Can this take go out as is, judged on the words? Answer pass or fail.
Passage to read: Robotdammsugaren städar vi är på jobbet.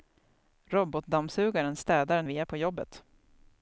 pass